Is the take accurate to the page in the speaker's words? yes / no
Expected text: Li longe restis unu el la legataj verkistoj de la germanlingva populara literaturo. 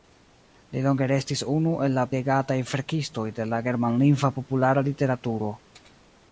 yes